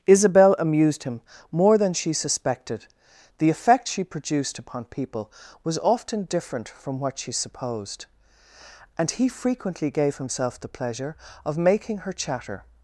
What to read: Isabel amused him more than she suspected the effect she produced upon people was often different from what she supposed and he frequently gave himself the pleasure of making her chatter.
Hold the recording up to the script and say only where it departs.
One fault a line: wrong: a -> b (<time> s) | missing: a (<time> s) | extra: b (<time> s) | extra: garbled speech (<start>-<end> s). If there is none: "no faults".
no faults